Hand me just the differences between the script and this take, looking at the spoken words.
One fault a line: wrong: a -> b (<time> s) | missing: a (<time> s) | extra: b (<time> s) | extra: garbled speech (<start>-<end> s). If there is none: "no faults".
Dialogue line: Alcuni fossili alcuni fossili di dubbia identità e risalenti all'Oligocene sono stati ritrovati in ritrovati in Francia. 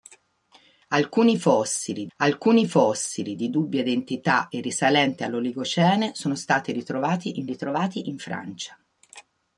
no faults